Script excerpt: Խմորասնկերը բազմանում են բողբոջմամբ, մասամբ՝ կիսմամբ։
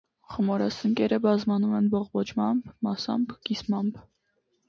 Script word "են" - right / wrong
right